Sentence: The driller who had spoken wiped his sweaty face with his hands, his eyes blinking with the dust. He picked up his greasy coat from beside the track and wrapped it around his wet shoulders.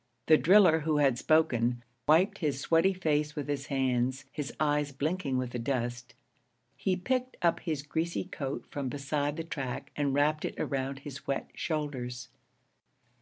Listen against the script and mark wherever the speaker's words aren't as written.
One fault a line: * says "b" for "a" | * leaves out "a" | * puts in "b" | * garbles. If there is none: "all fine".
all fine